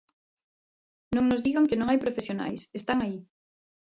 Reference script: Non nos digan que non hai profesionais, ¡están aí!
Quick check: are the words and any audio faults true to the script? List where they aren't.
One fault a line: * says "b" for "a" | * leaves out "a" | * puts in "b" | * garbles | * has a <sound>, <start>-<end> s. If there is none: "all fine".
all fine